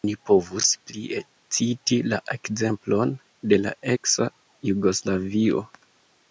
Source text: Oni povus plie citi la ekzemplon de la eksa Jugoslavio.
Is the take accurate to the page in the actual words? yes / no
yes